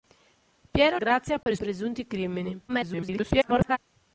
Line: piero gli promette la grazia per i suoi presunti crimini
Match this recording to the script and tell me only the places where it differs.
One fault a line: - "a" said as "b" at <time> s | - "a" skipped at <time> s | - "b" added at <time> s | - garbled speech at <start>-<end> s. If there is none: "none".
- "gli promette la" skipped at 1.0 s
- "suoi" skipped at 1.6 s
- garbled speech at 2.7-3.8 s